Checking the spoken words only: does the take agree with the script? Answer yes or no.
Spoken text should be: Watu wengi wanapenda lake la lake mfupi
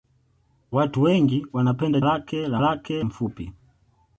yes